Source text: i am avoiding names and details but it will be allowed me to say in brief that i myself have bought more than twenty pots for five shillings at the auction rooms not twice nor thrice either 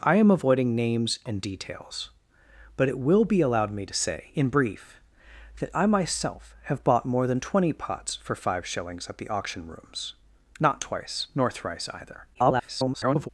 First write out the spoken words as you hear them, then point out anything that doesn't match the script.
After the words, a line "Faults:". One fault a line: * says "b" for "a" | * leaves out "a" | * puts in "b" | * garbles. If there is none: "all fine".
i am avoiding names and details but it will be allowed me to say in brief that i myself have bought more than twenty pots for five shillings at the auction rooms not twice nor thrice either [garbled]
Faults:
* garbles